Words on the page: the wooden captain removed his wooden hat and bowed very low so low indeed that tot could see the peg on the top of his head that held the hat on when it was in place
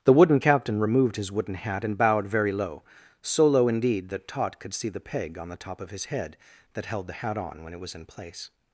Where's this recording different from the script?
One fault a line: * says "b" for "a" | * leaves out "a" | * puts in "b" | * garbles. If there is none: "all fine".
all fine